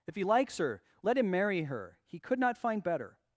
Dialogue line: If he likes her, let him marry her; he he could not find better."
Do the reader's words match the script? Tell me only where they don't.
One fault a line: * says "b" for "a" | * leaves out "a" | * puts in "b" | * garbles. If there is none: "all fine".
* leaves out "he"